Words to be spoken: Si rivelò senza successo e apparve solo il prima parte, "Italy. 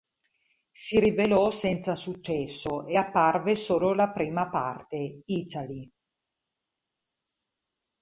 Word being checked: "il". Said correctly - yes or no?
no